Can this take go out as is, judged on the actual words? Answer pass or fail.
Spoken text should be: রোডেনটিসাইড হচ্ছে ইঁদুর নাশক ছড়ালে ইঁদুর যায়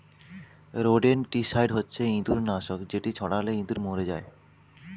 fail